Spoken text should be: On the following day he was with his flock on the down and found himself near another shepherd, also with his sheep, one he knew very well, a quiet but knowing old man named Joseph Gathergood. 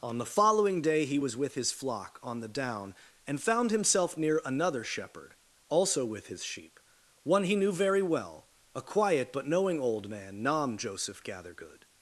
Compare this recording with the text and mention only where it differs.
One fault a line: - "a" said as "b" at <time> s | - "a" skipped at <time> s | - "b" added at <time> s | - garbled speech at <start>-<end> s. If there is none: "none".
- "named" said as "nam" at 10.4 s